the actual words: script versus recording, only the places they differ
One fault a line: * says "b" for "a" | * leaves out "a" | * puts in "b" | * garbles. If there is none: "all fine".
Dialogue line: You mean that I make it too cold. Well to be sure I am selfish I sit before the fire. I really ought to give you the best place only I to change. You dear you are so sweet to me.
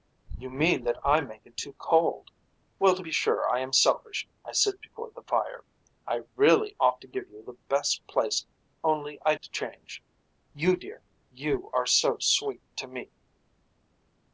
all fine